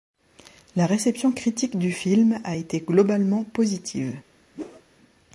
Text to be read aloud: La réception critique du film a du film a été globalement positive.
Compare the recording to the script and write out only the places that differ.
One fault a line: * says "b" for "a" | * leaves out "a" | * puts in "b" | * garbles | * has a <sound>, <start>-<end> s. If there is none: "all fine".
* leaves out "du film a"
* has a whoosh, 4.5-4.8 s